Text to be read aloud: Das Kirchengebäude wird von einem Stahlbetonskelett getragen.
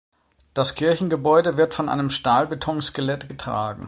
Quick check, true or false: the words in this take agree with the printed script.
true